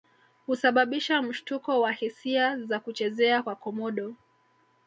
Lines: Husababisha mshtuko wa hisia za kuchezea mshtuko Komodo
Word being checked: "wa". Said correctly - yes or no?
yes